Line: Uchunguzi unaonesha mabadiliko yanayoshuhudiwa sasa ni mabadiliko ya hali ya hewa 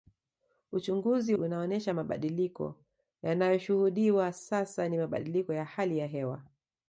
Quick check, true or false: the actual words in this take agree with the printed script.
true